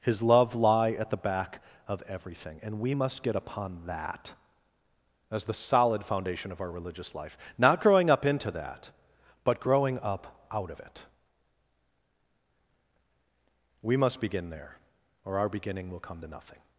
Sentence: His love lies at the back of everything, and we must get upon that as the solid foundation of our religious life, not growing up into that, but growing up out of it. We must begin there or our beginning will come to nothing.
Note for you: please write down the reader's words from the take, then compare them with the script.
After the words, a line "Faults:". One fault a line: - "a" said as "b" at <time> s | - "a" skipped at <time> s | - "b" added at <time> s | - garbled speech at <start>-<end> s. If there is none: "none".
His love lie at the back of everything, and we must get upon that as the solid foundation of our religious life, not growing up into that, but growing up out of it. We must begin there or our beginning will come to nothing.
Faults:
- "lies" said as "lie" at 0.6 s